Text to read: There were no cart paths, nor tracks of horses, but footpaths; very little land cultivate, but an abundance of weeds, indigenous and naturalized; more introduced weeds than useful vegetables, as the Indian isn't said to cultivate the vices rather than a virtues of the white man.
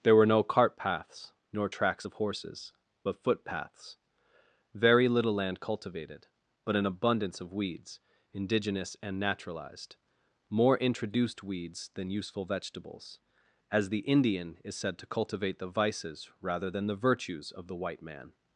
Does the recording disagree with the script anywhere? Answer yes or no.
yes